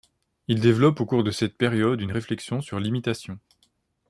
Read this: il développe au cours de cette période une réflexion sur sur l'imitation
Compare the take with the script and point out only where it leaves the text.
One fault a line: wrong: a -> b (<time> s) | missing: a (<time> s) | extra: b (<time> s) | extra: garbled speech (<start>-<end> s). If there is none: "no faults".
missing: sur (2.8 s)